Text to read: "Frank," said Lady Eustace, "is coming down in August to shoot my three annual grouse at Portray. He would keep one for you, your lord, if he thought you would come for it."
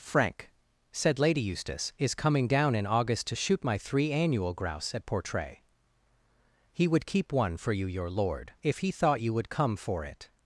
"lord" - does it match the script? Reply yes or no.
yes